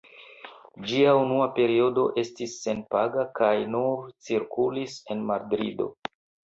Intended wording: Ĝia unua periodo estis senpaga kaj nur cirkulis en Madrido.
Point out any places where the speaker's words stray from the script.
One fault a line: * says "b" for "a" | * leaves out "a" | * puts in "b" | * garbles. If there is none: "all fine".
all fine